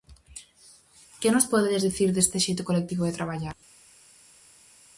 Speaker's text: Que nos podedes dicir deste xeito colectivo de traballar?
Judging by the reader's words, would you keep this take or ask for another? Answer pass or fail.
pass